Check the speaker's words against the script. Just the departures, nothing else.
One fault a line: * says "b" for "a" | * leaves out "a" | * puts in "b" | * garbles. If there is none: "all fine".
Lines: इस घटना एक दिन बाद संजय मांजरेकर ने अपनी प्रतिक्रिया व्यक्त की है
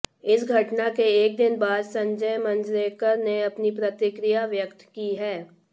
* puts in "के"